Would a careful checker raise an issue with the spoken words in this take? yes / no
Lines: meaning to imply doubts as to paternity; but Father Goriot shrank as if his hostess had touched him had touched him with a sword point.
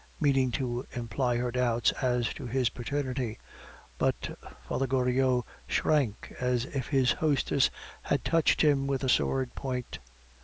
yes